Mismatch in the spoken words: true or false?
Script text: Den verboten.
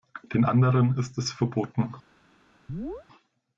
true